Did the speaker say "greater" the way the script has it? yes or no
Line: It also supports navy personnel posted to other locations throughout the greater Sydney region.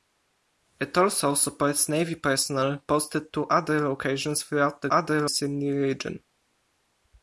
no